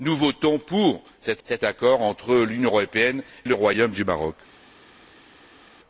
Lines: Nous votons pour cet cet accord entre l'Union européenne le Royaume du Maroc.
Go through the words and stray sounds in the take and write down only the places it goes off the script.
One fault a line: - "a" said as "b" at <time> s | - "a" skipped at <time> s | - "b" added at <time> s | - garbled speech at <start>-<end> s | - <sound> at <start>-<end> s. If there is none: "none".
none